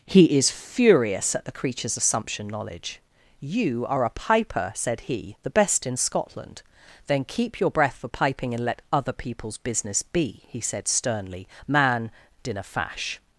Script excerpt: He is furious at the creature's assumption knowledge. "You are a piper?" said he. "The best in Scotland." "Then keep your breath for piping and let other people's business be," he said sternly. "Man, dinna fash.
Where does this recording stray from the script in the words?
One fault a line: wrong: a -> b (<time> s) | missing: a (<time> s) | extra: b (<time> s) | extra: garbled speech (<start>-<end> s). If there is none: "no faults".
no faults